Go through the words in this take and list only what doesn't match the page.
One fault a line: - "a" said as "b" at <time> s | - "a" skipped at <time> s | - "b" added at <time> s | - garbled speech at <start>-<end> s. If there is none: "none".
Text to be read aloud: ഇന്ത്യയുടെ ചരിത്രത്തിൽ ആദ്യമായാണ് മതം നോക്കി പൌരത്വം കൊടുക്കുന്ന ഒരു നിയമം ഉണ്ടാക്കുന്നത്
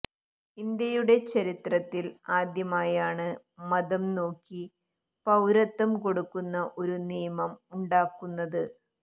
none